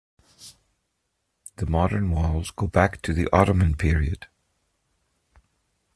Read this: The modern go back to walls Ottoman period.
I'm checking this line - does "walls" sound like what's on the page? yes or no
no